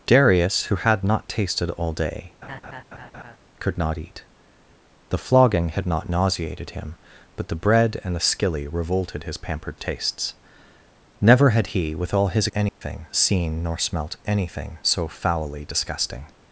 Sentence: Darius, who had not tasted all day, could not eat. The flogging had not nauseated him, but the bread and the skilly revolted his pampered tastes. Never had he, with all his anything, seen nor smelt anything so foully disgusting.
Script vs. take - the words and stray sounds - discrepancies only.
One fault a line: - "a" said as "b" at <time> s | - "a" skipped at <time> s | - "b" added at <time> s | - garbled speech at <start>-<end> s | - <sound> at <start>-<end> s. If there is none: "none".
- laugh at 2.4-3.4 s
- dropout at 12.7-12.8 s